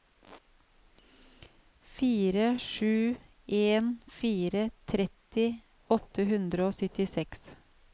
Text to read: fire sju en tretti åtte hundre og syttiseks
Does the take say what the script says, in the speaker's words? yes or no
no